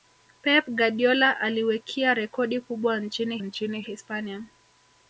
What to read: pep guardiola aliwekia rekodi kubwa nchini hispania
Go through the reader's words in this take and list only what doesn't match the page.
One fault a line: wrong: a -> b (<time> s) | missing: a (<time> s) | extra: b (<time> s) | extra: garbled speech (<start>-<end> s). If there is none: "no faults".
extra: nchini (3.4 s)